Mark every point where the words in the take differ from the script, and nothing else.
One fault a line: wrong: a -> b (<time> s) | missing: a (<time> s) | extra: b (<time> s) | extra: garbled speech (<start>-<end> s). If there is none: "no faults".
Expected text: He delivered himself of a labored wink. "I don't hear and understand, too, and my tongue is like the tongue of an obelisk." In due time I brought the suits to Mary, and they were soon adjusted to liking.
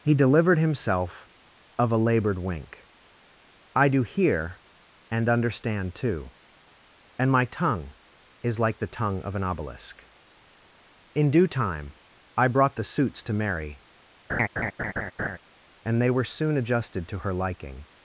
wrong: don't -> do (3.9 s)
extra: her (17.2 s)